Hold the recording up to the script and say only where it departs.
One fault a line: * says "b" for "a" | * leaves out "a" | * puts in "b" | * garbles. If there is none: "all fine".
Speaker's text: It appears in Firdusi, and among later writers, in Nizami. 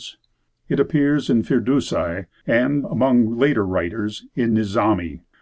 all fine